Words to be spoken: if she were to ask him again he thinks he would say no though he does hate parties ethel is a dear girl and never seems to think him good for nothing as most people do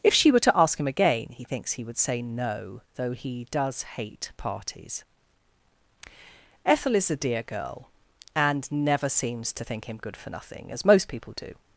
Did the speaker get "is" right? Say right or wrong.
right